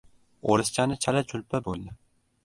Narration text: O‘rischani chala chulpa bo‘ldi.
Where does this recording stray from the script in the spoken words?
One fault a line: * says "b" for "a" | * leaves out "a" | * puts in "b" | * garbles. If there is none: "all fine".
all fine